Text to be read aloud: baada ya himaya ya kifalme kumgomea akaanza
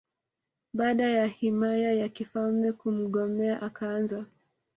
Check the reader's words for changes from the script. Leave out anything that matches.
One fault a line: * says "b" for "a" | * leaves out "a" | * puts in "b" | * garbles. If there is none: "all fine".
all fine